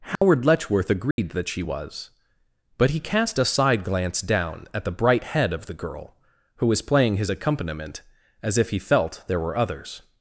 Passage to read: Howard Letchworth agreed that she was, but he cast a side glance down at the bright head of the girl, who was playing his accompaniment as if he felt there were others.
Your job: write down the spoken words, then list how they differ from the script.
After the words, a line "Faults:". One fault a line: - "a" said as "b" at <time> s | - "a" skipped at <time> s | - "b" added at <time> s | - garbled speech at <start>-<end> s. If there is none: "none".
Howard Letchworth agreed that she was, but he cast a side glance down at the bright head of the girl, who was playing his accompaniment as if he felt there were others.
Faults:
none